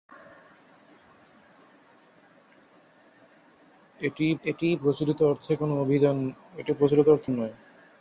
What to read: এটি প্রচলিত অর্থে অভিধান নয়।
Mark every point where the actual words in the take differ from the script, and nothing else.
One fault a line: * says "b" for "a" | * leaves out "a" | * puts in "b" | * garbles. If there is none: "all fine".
* puts in "এটি"
* leaves out "অভিধান"